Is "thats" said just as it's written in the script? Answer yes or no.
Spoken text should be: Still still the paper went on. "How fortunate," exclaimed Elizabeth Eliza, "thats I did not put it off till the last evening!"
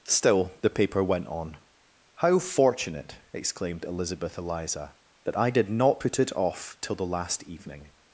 no